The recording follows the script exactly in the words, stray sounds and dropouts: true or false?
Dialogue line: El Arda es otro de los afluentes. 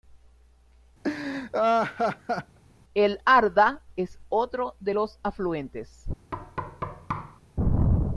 false